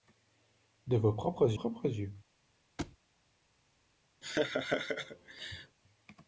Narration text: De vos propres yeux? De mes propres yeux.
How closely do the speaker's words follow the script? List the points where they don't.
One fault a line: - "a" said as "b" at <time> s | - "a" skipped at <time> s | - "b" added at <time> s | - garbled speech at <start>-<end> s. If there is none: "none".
- "yeux De mes" skipped at 1.6 s